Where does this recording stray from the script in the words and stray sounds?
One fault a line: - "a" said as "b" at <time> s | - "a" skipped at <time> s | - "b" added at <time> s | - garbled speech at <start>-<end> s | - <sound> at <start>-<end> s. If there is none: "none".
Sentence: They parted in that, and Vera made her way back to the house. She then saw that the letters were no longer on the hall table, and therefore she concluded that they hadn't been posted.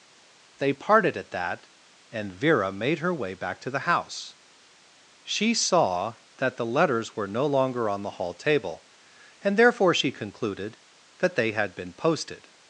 - "in" said as "at" at 1.2 s
- "then" skipped at 5.5 s
- "hadn't" said as "had" at 11.5 s